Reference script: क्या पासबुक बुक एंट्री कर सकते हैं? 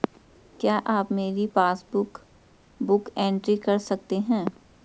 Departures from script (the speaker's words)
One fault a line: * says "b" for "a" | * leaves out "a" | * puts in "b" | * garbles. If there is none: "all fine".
* puts in "आप मेरी"